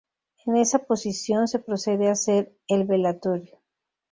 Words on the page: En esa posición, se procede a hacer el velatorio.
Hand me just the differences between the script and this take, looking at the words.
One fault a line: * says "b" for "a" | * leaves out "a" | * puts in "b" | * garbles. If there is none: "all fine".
all fine